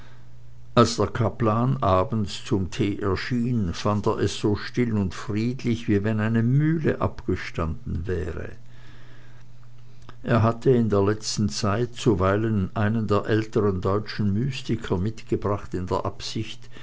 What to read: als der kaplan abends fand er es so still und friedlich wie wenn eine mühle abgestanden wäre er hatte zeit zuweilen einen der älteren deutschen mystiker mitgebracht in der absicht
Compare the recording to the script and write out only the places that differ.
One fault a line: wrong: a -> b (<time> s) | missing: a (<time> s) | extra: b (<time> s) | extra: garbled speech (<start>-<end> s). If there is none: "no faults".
extra: zum tee erschien (2.4 s)
extra: in der letzten (10.7 s)